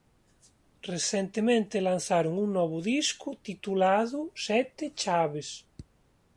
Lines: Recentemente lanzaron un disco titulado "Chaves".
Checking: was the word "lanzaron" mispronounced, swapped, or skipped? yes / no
no